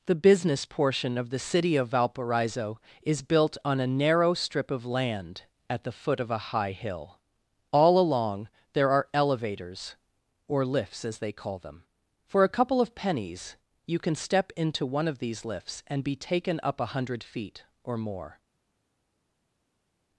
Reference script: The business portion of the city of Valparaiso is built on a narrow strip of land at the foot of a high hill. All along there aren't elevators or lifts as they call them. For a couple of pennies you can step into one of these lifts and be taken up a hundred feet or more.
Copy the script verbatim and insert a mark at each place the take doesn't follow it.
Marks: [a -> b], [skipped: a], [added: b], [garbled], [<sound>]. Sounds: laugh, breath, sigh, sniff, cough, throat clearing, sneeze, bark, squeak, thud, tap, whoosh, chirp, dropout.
The business portion of the city of Valparaiso is built on a narrow strip of land at the foot of a high hill. All along there [aren't -> are] elevators or lifts as they call them. For a couple of pennies you can step into one of these lifts and be taken up a hundred feet or more.